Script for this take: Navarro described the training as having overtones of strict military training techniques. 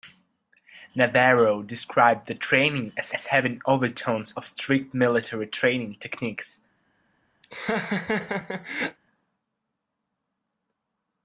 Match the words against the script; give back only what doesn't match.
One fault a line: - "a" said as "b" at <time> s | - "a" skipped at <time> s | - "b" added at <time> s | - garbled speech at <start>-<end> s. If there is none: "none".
- "as" added at 3.1 s